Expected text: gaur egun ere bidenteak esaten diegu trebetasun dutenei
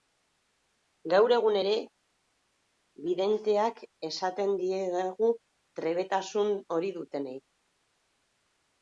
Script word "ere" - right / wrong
right